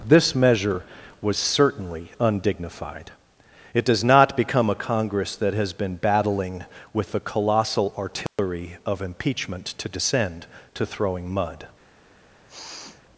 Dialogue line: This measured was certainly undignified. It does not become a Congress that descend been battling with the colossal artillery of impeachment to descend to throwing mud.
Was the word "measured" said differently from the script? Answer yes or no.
yes